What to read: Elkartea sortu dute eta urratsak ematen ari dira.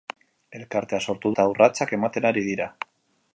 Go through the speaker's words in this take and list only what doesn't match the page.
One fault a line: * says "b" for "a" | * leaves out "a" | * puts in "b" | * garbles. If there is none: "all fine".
* leaves out "dute"